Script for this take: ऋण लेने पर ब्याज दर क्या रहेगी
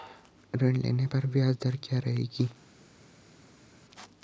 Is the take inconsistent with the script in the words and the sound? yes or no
no